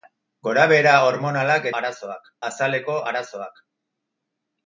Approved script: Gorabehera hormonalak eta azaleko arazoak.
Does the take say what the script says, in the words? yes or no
no